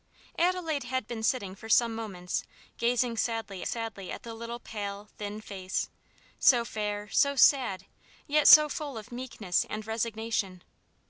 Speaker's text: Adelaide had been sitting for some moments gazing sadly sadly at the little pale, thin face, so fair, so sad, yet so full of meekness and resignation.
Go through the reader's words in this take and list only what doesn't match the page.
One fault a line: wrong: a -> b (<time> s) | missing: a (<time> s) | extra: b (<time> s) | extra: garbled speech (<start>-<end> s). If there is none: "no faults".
no faults